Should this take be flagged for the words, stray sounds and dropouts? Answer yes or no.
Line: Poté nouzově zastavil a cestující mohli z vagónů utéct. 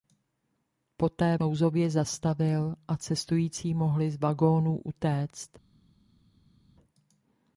no